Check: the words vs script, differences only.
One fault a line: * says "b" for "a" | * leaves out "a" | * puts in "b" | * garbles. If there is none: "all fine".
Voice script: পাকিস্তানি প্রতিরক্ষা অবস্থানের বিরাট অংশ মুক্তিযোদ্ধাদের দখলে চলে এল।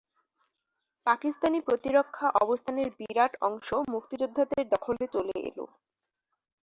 all fine